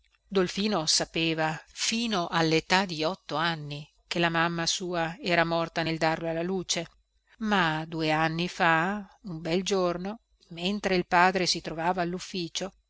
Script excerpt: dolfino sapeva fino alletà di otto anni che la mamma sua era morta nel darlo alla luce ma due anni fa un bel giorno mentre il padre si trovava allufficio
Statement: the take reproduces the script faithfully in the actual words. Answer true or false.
true